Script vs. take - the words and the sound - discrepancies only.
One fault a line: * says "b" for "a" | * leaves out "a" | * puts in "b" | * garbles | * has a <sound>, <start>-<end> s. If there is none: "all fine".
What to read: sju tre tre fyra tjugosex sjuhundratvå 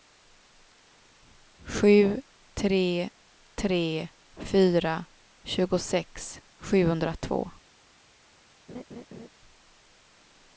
* has a laugh, 8.7-9.3 s